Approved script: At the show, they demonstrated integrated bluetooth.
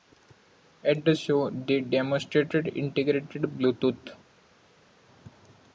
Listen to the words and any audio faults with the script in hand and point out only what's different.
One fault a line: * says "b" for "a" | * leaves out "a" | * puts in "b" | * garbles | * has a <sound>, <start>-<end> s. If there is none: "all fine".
all fine